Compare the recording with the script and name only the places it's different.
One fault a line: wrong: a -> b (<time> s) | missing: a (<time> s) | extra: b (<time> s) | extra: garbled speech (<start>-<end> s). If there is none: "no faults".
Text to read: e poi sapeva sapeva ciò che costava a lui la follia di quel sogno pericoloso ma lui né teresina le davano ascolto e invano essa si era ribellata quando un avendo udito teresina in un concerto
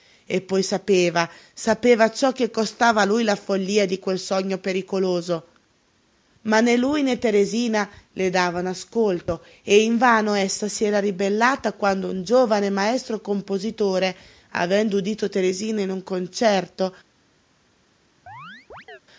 extra: né (6.6 s)
extra: giovane maestro compositore (12.2 s)